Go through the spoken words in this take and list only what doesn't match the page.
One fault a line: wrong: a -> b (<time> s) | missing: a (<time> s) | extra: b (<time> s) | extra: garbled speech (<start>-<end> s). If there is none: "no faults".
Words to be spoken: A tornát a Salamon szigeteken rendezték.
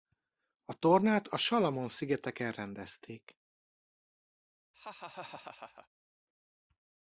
no faults